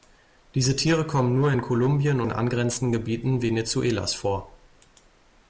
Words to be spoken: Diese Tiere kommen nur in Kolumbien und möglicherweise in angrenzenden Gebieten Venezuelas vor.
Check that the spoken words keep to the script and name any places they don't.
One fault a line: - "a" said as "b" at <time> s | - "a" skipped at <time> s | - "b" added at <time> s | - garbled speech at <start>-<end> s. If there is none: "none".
- "und möglicherweise" skipped at 2.2 s